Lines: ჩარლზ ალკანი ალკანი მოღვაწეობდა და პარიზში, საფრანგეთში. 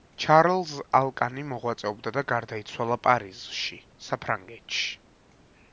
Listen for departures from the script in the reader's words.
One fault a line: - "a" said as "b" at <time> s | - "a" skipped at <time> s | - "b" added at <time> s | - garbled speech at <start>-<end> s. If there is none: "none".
- "ალკანი" skipped at 1.4 s
- "გარდაიცვალა" added at 2.3 s